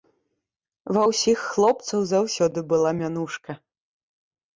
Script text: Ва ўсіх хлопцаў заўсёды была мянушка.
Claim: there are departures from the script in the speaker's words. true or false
false